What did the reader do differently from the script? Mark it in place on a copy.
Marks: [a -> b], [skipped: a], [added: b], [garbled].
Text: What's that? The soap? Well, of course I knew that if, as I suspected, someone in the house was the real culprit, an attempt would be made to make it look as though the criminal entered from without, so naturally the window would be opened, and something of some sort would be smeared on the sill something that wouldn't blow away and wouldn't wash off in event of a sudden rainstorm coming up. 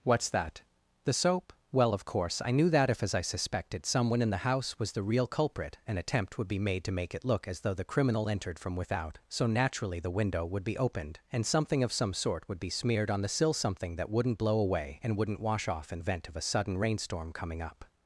What's that? The soap? Well, of course I knew that if, as I suspected, someone in the house was the real culprit, an attempt would be made to make it look as though the criminal entered from without, so naturally the window would be opened, and something of some sort would be smeared on the sill something that wouldn't blow away and wouldn't wash off in event of a sudden rainstorm coming up.